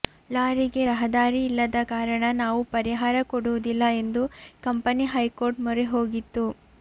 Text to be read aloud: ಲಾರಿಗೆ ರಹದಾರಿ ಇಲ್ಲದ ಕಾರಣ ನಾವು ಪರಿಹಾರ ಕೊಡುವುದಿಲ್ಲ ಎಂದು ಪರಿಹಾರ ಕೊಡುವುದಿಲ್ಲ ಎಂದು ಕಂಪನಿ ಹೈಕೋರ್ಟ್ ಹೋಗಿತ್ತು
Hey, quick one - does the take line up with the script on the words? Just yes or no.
no